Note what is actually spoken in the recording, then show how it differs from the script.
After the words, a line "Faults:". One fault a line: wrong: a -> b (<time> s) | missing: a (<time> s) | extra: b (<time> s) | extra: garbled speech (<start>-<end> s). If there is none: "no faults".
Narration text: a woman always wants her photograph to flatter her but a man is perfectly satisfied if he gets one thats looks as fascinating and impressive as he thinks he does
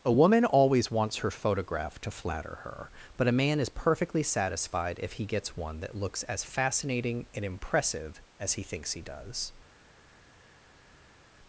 a woman always wants her photograph to flatter her but a man is perfectly satisfied if he gets one that looks as fascinating and impressive as he thinks he does
Faults:
wrong: thats -> that (5.8 s)